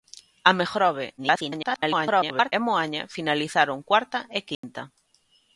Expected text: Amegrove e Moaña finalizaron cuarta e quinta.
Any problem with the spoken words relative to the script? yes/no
yes